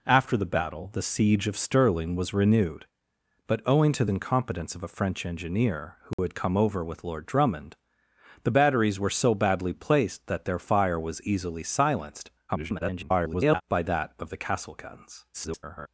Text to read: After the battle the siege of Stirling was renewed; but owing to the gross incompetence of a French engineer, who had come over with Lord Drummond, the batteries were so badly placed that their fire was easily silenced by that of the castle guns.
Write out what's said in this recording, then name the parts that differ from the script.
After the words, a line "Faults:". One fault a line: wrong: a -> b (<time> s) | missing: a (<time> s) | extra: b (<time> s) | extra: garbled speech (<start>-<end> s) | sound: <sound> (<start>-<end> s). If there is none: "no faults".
After the battle the siege of Stirling was renewed; but owing to incompetence of a French engineer, who had come over with Lord Drummond, the batteries were so badly placed that their fire was easily silenced [garbled] by that of the castle guns. [garbled]
Faults:
missing: the gross (4.0 s)
sound: dropout (6.1-6.2 s)
extra: garbled speech (12.5-13.6 s)
extra: garbled speech (15.3-15.9 s)